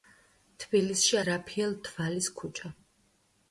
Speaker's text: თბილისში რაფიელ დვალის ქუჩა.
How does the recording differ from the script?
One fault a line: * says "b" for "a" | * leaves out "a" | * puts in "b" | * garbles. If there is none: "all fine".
all fine